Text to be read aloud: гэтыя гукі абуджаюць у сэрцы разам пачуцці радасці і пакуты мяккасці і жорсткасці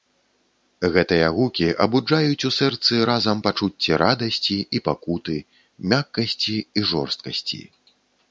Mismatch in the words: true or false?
false